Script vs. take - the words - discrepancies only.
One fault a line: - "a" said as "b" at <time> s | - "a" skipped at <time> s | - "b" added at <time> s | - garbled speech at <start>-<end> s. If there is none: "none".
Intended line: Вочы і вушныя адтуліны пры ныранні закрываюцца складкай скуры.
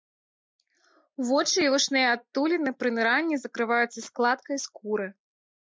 none